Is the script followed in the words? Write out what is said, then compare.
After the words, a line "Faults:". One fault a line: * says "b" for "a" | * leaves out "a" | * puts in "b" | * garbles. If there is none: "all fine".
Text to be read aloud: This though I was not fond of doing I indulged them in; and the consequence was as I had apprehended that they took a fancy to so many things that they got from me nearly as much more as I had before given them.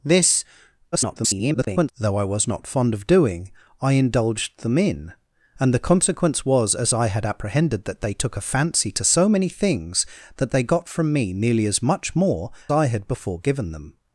This [garbled] though I was not fond of doing I indulged them in; and the consequence was as I had apprehended that they took a fancy to so many things that they got from me nearly as much more I had before given them.
Faults:
* garbles
* leaves out "as"